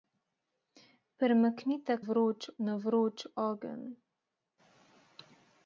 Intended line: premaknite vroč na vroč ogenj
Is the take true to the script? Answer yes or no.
yes